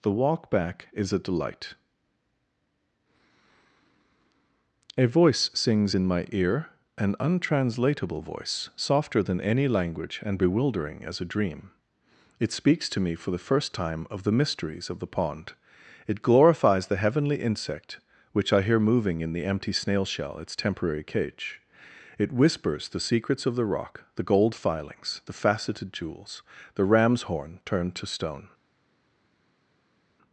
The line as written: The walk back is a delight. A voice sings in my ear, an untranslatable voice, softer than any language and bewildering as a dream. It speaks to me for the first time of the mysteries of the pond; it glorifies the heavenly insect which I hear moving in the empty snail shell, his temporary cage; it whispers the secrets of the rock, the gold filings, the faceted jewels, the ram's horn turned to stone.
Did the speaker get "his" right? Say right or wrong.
wrong